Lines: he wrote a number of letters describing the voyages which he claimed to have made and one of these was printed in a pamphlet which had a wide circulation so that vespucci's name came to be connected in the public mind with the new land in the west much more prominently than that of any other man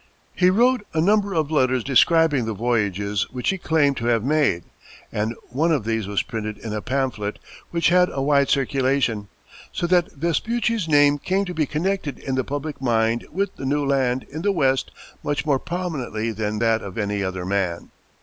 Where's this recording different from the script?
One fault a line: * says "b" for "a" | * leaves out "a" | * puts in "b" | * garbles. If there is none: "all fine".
all fine